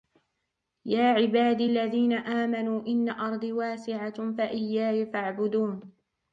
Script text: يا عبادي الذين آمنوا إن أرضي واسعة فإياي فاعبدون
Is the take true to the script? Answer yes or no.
yes